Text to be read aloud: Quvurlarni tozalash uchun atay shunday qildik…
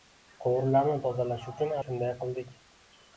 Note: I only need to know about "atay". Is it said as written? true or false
false